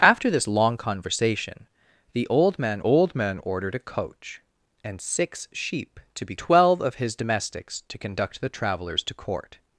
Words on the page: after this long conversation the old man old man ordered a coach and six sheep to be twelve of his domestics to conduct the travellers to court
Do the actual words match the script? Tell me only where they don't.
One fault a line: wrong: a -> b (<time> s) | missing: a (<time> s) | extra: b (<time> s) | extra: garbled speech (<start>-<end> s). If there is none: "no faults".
no faults